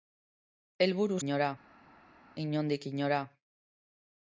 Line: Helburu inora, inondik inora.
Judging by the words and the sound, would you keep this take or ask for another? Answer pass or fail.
pass